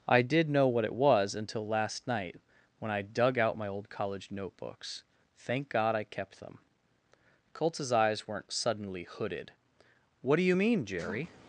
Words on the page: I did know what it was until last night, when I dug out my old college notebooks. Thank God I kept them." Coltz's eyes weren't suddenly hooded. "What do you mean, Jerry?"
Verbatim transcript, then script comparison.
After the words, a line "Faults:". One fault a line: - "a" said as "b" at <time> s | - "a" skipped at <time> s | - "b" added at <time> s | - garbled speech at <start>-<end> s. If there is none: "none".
I did know what it was until last night, when I dug out my old college notebooks. Thank God I kept them." Coltz's eyes weren't suddenly hooded. "What do you mean, Jerry?"
Faults:
none